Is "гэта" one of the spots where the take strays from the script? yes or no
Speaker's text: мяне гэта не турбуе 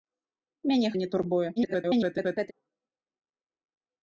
yes